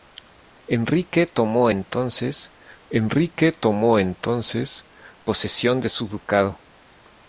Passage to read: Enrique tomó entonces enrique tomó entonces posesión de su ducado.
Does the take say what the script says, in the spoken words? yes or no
yes